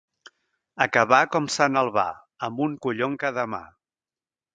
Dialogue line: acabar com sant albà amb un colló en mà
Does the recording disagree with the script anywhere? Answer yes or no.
yes